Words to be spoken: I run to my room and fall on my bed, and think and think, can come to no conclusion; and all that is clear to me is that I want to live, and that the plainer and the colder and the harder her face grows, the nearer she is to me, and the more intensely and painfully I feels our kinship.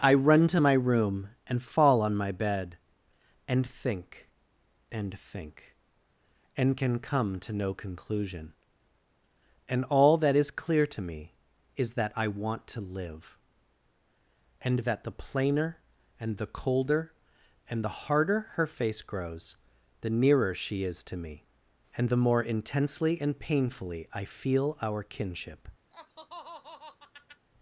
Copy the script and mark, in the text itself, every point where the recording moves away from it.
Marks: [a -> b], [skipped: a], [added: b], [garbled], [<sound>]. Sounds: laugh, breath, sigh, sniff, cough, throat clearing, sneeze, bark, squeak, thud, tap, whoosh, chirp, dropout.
I run to my room and fall on my bed, and think and think, [added: and] can come to no conclusion; and all that is clear to me is that I want to live, and that the plainer and the colder and the harder her face grows, the nearer she is to me, and the more intensely and painfully I [feels -> feel] our kinship. [laugh]